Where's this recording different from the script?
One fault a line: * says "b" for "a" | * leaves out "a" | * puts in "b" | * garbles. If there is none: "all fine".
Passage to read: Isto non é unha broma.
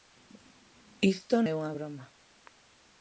* leaves out "non"